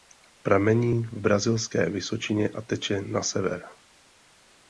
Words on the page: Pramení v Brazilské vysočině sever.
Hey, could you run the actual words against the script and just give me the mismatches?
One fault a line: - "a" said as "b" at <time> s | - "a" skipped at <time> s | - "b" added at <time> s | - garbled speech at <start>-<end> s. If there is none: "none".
- "a teče na" added at 2.5 s